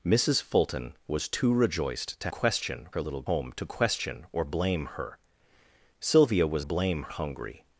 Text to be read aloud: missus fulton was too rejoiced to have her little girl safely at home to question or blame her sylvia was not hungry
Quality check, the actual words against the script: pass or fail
fail